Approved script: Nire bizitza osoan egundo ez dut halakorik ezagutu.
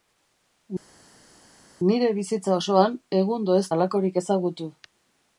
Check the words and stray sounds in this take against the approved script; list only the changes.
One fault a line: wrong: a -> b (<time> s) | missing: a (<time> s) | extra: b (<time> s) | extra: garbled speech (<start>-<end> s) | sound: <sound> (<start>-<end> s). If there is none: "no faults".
missing: dut (3.7 s)